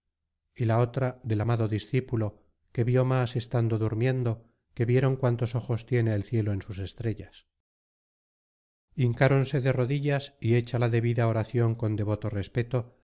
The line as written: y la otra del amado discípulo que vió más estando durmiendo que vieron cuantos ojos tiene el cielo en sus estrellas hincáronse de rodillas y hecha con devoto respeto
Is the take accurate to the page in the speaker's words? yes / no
no